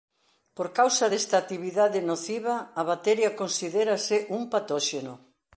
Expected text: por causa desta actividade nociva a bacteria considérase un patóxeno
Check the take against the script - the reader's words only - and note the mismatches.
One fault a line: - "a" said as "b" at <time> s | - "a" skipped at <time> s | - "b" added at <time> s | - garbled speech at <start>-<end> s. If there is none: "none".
none